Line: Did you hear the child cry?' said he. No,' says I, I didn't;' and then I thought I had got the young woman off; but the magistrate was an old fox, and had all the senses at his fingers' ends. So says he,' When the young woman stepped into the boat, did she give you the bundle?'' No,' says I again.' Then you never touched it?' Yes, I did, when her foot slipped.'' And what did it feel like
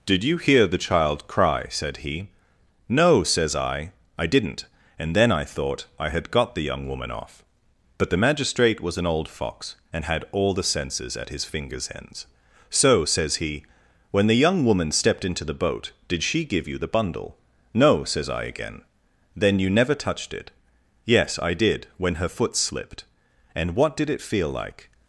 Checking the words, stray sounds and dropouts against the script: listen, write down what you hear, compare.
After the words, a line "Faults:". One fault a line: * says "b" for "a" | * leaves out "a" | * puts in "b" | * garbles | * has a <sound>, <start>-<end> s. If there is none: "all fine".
Did you hear the child cry?' said he. No,' says I, I didn't;' and then I thought I had got the young woman off; but the magistrate was an old fox, and had all the senses at his fingers' ends. So says he,' When the young woman stepped into the boat, did she give you the bundle?'' No,' says I again.' Then you never touched it?' Yes, I did, when her foot slipped.'' And what did it feel like
Faults:
all fine